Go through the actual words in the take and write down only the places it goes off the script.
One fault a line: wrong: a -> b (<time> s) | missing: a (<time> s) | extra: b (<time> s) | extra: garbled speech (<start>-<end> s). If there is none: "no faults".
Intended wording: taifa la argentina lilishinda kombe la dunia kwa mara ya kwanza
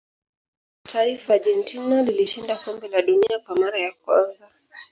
missing: la (1.3 s)